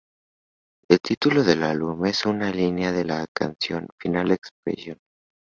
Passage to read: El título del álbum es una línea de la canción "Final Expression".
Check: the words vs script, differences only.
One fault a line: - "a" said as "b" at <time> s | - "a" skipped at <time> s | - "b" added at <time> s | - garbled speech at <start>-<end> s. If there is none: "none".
none